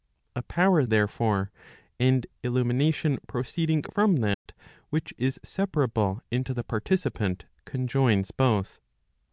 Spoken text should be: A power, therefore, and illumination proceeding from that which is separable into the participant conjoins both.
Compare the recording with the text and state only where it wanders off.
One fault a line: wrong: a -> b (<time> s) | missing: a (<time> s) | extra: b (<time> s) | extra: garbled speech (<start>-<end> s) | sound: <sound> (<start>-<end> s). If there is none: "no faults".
sound: dropout (4.3-4.5 s)